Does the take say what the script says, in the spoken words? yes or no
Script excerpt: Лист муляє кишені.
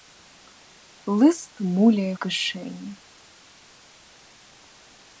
yes